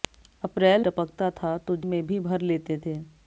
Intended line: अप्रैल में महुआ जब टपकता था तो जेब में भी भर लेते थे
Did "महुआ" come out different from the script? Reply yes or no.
yes